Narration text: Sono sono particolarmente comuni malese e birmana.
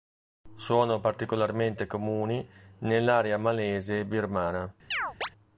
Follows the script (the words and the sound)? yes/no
no